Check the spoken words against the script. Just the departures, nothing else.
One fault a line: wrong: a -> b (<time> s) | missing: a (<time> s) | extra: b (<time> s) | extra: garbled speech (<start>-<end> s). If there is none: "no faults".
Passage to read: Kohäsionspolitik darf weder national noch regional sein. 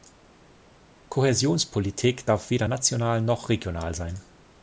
no faults